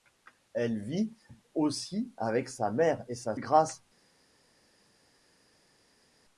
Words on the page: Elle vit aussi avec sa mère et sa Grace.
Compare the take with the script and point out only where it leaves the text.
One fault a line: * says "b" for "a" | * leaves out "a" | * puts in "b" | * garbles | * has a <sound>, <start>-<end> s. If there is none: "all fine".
all fine